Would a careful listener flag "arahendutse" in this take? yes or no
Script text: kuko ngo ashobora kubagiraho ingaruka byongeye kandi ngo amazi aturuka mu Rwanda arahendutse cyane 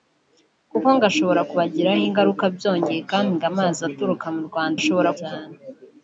yes